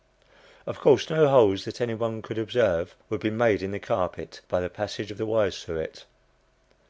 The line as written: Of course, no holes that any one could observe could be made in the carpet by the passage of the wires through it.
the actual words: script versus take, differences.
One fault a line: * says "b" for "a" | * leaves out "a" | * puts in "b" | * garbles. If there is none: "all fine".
* says "would" for "could"